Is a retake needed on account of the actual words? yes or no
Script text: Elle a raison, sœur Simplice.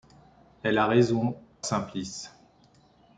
yes